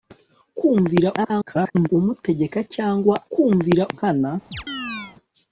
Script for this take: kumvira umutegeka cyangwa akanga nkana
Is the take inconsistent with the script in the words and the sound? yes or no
yes